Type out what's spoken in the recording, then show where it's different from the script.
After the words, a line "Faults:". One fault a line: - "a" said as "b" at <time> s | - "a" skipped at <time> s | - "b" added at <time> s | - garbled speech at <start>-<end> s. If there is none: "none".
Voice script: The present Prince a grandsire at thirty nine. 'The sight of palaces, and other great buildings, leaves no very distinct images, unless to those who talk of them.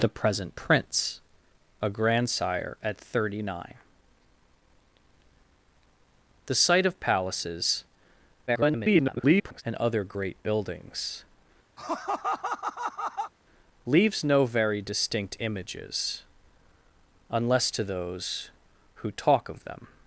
The present Prince a grandsire at thirty nine. 'The sight of palaces, [garbled] and other great buildings, leaves no very distinct images, unless to those who talk of them.
Faults:
- garbled speech at 8.5-9.6 s